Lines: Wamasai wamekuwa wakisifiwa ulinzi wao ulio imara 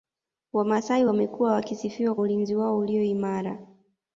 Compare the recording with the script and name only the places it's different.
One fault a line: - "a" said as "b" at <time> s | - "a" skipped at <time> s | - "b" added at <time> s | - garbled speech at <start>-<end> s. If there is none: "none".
none